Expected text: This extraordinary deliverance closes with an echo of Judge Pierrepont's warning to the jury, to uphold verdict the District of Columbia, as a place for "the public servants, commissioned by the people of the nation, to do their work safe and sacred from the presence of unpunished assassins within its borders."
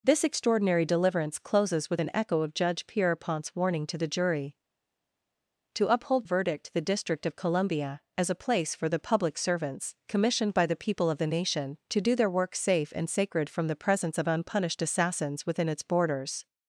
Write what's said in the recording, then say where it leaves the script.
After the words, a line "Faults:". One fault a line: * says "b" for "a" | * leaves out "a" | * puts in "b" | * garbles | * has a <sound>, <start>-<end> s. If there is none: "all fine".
This extraordinary deliverance closes with an echo of Judge Pierrepont's warning to the jury, to uphold verdict the District of Columbia, as a place for "the public servants, commissioned by the people of the nation, to do their work safe and sacred from the presence of unpunished assassins within its borders."
Faults:
all fine